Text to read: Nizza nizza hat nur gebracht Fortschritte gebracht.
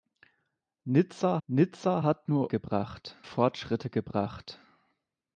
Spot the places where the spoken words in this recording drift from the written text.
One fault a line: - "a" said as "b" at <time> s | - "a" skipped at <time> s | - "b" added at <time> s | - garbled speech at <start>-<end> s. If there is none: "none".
none